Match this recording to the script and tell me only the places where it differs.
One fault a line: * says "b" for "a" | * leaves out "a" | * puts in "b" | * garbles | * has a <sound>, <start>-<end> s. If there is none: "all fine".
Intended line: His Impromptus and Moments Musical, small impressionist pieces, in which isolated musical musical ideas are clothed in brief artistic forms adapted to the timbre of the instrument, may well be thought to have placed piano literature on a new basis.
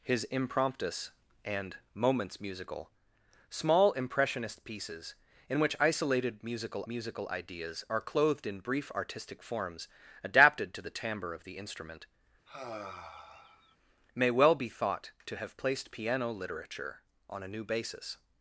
* has a sigh, 12.5-13.8 s